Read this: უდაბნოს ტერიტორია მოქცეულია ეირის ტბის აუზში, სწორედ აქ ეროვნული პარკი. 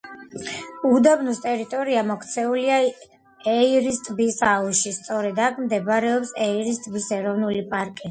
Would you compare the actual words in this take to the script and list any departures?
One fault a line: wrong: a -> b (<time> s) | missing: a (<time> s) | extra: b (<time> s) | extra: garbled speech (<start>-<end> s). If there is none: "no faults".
extra: მდებარეობს ეირის ტბის (5.7 s)